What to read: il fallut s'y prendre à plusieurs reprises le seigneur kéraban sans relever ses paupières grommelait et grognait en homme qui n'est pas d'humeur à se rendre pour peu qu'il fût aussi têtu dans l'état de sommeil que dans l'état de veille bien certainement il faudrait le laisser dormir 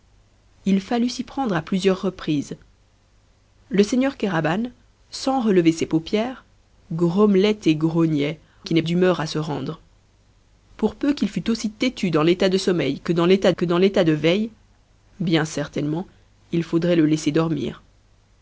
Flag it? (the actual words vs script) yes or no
yes